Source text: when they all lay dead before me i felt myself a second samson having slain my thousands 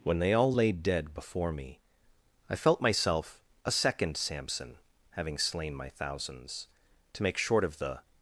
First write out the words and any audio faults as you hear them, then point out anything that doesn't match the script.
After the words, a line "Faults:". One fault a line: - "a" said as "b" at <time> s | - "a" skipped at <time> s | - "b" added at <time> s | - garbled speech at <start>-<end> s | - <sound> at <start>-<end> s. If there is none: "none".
when they all lay dead before me i felt myself a second samson having slain my thousands to make short of the
Faults:
- "to make short of the" added at 7.1 s